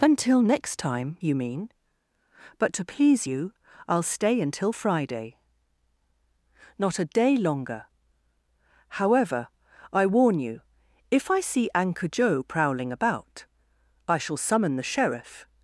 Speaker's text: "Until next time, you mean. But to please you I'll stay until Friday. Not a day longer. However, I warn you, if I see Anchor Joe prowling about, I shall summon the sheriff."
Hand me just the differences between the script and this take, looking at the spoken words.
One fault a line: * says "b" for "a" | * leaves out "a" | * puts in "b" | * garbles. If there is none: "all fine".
all fine